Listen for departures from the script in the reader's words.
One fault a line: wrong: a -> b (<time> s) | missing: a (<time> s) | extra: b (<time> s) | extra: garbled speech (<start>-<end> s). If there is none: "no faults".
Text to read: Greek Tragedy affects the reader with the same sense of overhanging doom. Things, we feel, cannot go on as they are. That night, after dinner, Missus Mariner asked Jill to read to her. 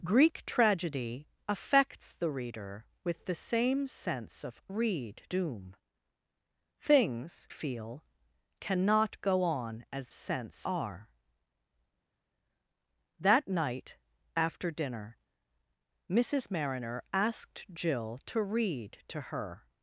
wrong: overhanging -> read (4.7 s)
missing: we (7.5 s)
wrong: they -> sense (10.1 s)